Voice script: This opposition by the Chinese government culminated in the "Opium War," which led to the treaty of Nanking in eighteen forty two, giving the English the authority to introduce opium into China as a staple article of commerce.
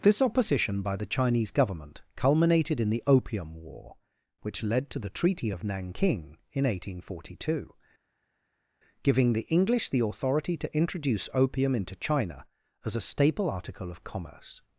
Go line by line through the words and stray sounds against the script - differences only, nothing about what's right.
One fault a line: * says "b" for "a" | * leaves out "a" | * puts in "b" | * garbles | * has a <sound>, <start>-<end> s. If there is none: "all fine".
all fine